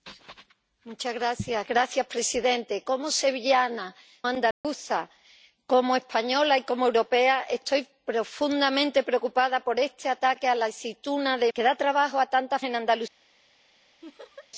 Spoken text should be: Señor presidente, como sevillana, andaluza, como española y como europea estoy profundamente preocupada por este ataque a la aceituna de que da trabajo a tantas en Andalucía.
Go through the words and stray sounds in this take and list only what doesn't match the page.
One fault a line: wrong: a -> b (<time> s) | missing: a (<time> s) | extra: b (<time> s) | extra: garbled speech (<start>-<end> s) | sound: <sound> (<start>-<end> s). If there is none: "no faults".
sound: dropout (4.5-4.6 s)
sound: laugh (14.0-14.5 s)